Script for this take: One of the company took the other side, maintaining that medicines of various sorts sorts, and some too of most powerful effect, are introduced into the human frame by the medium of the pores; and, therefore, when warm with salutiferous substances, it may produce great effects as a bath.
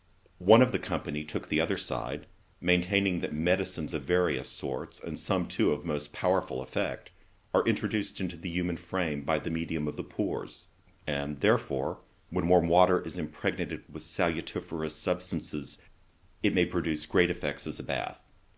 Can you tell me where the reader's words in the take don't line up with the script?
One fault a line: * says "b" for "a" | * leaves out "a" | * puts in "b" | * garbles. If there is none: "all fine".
* leaves out "sorts"
* puts in "water is impregnated"